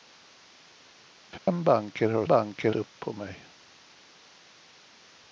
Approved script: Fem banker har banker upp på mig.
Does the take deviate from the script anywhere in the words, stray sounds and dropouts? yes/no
yes